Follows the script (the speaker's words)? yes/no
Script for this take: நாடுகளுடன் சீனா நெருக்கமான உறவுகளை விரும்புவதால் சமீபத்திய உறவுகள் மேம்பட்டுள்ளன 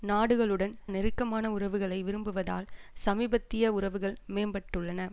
no